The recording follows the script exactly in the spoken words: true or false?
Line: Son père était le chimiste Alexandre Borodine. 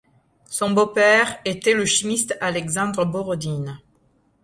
false